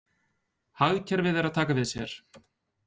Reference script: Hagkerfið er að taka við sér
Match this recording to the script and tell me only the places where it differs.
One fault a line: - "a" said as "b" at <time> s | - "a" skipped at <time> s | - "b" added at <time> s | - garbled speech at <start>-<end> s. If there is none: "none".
none